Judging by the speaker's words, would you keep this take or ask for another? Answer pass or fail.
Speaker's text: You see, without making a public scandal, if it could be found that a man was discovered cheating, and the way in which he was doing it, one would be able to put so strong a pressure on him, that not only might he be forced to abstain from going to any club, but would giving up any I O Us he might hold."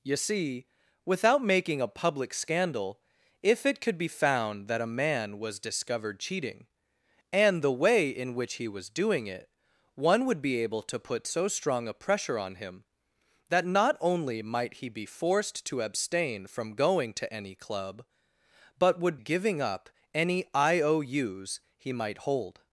pass